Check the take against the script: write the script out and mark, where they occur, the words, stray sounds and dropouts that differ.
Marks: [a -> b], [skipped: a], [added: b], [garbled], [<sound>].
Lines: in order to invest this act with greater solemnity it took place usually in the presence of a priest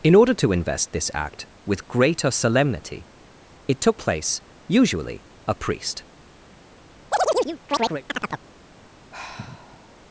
in order to invest this act with greater solemnity it took place usually [skipped: in the presence of] a priest [chirp] [sigh]